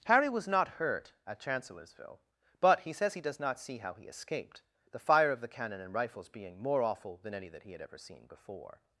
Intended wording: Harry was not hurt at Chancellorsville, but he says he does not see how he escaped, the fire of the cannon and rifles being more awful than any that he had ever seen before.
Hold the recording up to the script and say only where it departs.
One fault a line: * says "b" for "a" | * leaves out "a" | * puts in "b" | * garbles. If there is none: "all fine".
all fine